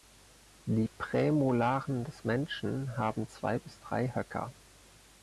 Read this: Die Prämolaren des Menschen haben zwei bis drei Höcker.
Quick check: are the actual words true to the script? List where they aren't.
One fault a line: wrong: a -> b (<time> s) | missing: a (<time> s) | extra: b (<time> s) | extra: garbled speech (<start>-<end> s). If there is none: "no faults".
no faults